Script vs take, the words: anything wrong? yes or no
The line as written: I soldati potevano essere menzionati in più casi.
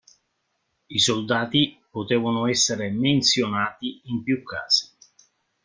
no